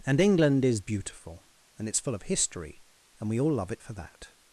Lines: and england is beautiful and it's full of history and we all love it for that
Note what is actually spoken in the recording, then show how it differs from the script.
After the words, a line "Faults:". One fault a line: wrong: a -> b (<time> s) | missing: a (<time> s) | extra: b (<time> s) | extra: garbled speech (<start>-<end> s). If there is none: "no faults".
and england is beautiful and it's full of history and we all love it for that
Faults:
no faults